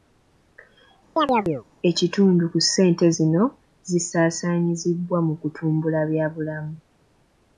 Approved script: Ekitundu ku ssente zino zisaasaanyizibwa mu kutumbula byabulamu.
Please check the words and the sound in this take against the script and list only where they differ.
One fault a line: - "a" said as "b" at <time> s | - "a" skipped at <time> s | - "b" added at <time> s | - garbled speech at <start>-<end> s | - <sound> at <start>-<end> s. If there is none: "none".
- chirp at 1.2-1.6 s